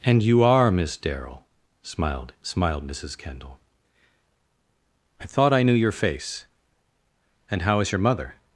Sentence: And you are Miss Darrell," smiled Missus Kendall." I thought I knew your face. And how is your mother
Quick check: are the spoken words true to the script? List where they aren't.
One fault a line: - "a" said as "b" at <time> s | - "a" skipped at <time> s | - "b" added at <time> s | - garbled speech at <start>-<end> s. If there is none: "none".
- "smiled" added at 2.4 s